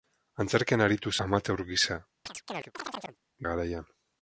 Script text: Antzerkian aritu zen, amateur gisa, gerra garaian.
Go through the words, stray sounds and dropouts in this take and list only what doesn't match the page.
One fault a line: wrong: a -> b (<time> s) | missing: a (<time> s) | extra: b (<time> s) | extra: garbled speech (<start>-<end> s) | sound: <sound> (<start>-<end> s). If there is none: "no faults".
missing: zen (1.1 s)
missing: gerra (2.0 s)
sound: chirp (2.3-3.2 s)